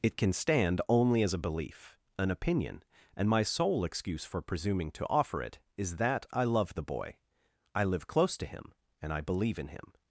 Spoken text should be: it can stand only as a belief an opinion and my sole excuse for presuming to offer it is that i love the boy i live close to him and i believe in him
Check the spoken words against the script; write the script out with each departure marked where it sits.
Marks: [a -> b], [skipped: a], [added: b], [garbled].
it can stand only as a belief an opinion and my sole excuse for presuming to offer it is that i love the boy i live close to him and i believe in him